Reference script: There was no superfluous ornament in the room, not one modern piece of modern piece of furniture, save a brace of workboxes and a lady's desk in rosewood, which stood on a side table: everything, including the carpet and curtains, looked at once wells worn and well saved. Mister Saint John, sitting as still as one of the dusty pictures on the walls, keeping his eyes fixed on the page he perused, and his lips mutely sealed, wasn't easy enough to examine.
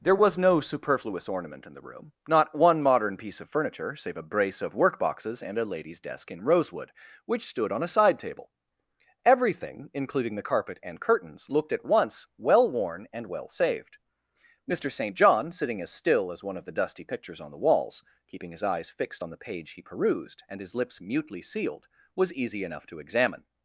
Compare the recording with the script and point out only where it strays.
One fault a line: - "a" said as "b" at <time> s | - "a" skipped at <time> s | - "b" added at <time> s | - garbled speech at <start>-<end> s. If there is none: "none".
- "modern piece of" skipped at 3.5 s
- "wells" said as "well" at 12.4 s
- "wasn't" said as "was" at 22.1 s